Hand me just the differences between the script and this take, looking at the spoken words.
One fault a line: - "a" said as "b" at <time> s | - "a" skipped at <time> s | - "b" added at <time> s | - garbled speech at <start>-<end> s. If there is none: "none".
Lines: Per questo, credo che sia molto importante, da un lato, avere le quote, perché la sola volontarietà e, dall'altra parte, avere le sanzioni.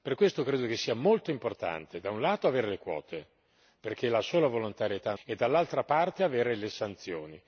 none